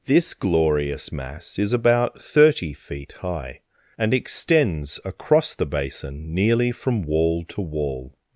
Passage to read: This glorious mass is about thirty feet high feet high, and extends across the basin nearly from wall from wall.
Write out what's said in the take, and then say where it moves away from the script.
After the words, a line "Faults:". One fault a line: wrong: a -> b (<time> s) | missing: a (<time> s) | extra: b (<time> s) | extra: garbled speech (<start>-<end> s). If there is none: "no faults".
This glorious mass is about thirty feet high, and extends across the basin nearly from wall to wall.
Faults:
missing: feet high (3.6 s)
wrong: from -> to (7.5 s)